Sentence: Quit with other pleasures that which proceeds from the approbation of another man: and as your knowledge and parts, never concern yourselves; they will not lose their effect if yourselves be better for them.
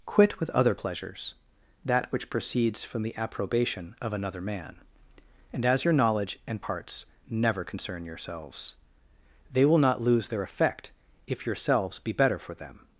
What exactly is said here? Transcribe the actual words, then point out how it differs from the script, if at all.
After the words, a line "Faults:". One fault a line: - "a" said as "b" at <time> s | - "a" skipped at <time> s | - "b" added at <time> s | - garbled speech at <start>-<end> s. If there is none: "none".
Quit with other pleasures that which proceeds from the approbation of another man: and as your knowledge and parts, never concern yourselves; they will not lose their effect if yourselves be better for them.
Faults:
none